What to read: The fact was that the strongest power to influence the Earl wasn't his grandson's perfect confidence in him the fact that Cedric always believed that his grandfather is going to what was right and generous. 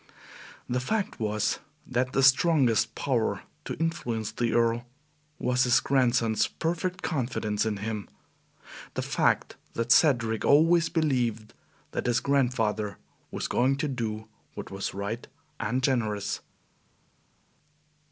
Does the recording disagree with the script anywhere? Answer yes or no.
yes